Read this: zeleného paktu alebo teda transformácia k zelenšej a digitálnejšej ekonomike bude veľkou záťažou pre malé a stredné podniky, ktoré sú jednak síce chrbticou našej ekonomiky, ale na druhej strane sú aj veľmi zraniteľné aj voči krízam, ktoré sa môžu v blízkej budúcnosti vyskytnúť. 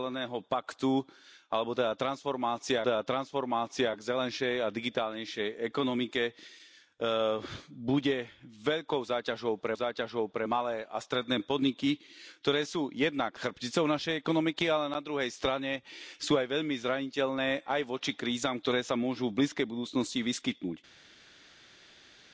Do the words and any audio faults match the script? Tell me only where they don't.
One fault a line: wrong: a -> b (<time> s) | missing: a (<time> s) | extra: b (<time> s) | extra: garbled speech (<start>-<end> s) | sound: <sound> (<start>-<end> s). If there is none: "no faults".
extra: teda transformácia (2.8 s)
extra: záťažou pre (9.7 s)
missing: síce (13.4 s)